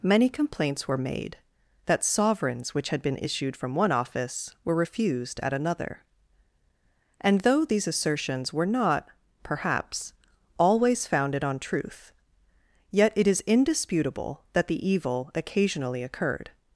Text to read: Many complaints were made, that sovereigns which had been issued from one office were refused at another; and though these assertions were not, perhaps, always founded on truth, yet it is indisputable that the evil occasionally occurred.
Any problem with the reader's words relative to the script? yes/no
no